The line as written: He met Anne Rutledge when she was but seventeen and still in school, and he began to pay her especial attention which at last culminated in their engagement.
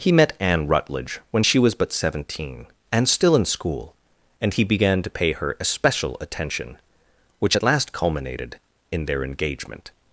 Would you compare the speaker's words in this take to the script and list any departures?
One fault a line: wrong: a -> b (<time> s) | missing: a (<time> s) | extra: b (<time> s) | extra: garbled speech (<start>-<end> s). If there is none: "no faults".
no faults